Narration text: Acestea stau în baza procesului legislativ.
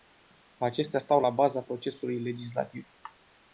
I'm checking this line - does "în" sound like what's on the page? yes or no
no